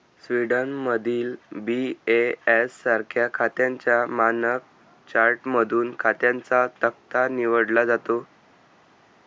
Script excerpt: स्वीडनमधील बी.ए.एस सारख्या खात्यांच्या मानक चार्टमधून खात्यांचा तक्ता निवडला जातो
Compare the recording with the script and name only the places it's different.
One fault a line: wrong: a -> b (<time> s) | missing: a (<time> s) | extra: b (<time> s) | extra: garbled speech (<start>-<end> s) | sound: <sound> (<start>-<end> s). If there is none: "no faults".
no faults